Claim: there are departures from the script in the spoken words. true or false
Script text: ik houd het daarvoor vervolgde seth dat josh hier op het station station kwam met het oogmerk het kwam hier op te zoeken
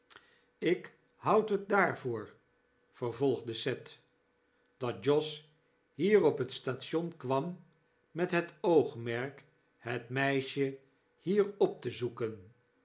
true